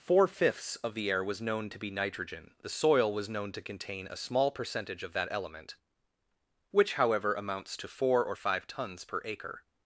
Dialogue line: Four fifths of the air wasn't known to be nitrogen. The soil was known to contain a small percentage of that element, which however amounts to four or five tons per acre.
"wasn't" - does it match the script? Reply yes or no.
no